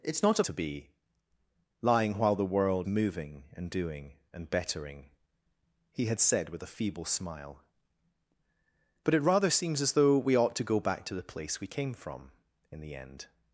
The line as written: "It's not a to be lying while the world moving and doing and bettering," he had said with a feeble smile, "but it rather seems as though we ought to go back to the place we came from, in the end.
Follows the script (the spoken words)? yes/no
yes